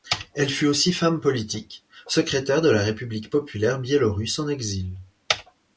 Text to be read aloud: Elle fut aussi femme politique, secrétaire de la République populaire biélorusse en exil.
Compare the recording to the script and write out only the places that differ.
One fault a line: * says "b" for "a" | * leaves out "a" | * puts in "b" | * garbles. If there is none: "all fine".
all fine